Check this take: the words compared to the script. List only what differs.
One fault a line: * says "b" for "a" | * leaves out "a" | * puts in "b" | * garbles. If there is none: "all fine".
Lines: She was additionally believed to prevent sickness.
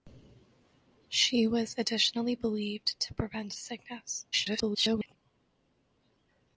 * garbles